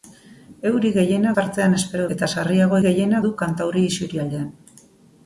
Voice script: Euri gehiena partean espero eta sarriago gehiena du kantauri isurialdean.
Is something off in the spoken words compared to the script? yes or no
no